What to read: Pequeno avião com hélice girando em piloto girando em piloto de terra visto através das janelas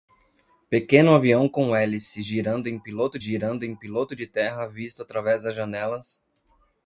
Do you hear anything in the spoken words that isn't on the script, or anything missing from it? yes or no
no